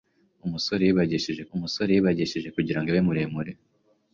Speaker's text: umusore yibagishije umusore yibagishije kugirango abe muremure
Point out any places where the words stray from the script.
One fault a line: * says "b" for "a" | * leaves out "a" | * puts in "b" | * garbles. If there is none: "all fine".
all fine